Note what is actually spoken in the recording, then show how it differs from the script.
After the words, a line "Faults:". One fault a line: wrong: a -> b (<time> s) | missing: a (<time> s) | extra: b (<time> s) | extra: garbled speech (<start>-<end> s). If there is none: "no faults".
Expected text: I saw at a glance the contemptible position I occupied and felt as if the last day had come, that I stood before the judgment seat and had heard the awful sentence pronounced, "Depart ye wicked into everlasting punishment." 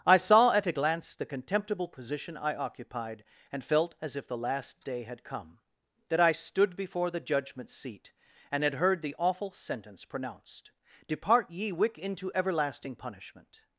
I saw at a glance the contemptible position I occupied and felt as if the last day had come, that I stood before the judgment seat and had heard the awful sentence pronounced, "Depart ye wick into everlasting punishment."
Faults:
wrong: wicked -> wick (11.7 s)